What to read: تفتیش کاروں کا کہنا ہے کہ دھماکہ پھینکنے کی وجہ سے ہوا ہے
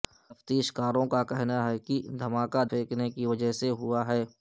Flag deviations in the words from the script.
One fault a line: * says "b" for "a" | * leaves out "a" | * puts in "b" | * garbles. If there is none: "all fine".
all fine